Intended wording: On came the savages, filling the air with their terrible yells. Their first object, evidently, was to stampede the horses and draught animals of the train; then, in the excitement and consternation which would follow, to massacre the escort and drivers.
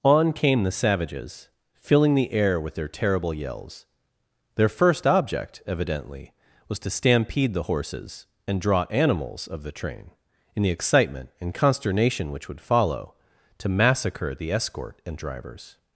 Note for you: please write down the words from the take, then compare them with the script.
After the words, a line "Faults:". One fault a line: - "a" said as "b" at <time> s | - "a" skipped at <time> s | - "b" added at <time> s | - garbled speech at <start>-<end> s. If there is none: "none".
On came the savages, filling the air with their terrible yells. Their first object, evidently, was to stampede the horses and draw animals of the train; in the excitement and consternation which would follow, to massacre the escort and drivers.
Faults:
- "draught" said as "draw" at 8.6 s
- "then" skipped at 10.1 s